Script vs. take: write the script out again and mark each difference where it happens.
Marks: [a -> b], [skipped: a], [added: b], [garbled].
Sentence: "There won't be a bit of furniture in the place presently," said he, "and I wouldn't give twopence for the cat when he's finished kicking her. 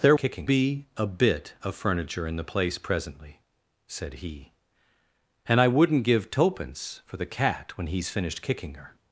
"There [won't -> kicking] be a bit of furniture in the place presently," said he, "and I wouldn't give twopence for the cat when he's finished kicking her.